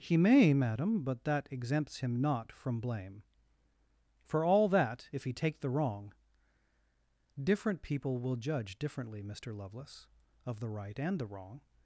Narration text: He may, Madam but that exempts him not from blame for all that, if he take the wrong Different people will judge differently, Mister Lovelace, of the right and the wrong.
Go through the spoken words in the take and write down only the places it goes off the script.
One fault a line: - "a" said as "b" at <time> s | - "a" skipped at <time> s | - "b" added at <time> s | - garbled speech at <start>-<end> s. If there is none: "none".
none